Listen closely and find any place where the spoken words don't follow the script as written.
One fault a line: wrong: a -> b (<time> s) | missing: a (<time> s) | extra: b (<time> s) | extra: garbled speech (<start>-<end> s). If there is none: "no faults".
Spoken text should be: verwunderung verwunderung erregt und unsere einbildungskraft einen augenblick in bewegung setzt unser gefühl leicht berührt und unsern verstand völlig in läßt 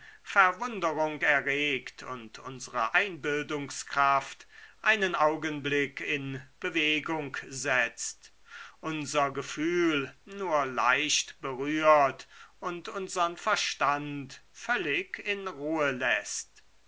missing: verwunderung (1.2 s)
extra: nur (10.2 s)
extra: ruhe (15.5 s)